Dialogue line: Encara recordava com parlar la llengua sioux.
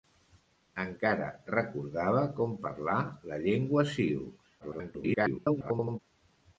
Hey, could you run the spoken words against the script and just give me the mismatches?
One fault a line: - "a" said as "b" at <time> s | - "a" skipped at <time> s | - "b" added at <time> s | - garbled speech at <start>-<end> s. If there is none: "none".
- garbled speech at 4.6-6.0 s